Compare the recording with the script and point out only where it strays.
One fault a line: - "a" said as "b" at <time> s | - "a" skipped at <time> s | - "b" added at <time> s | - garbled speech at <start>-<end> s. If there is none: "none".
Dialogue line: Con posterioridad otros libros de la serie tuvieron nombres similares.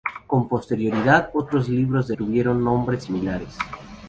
- "la serie" skipped at 2.1 s